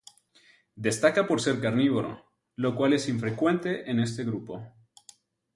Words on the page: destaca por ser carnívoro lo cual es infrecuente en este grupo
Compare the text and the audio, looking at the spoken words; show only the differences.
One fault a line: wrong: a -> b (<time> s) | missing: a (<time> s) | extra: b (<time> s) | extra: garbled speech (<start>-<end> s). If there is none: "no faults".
no faults